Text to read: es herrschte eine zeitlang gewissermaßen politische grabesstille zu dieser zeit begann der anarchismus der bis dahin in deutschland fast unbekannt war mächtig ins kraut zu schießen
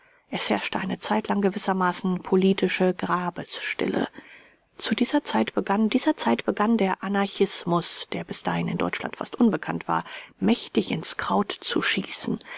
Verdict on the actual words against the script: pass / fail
fail